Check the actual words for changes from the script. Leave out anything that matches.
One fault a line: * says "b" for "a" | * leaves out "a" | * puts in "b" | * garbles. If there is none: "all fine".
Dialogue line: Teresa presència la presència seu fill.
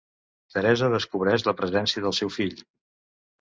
* says "descobreix" for "presència"
* puts in "del"